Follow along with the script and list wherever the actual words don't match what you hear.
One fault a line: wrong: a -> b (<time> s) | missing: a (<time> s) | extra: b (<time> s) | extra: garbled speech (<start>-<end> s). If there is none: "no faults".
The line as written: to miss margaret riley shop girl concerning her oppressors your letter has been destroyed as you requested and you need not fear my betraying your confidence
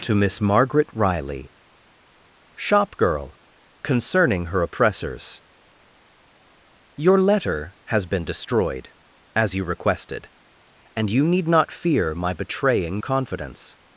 missing: your (13.0 s)